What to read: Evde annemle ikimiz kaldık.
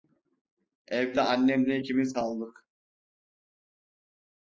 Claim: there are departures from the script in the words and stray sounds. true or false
false